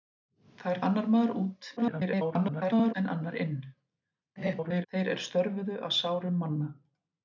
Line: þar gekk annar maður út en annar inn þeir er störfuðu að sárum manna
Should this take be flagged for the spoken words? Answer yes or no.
yes